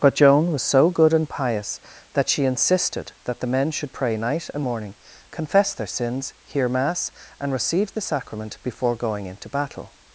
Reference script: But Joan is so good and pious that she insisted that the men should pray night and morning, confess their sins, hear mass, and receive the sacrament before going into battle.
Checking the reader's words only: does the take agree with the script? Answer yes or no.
no